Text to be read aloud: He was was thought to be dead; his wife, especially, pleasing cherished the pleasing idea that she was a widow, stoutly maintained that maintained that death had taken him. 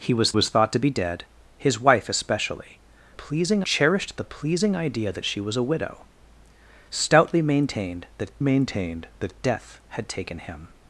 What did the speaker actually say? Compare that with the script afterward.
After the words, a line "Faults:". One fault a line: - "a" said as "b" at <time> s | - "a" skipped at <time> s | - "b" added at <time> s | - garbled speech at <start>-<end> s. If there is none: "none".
He was was thought to be dead; his wife, especially, pleasing cherished the pleasing idea that she was a widow, stoutly maintained that maintained that death had taken him.
Faults:
none